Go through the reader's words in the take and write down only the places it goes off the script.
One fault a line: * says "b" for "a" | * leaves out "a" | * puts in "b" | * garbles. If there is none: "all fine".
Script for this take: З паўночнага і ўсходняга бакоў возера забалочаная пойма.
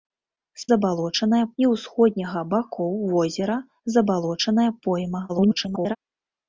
* says "забалочаная" for "паўночнага"
* garbles